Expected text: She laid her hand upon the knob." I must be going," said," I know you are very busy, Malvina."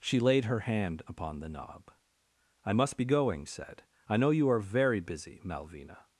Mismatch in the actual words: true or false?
false